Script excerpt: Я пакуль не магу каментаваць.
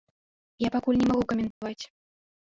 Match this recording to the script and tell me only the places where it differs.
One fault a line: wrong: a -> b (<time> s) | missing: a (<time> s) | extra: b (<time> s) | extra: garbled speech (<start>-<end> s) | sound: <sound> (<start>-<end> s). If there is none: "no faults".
sound: dropout (1.5-1.6 s)